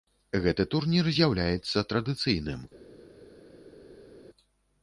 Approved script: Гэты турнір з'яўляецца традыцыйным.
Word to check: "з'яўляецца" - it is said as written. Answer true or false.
true